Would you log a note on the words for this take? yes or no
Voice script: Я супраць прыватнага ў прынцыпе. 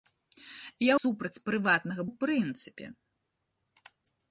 no